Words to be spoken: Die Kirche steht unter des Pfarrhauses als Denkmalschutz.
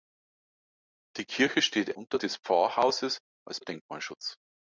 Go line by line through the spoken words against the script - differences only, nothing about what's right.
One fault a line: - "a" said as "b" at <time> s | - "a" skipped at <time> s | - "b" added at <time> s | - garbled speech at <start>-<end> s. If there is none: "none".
none